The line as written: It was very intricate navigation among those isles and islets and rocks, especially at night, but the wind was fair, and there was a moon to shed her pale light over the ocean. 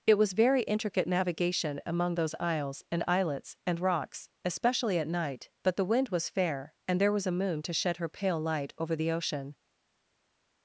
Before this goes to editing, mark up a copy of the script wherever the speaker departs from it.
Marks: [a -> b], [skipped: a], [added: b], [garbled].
It was very intricate navigation among those isles and islets and rocks, especially at night, but the wind was fair, and there was a moon to shed her pale light over the ocean.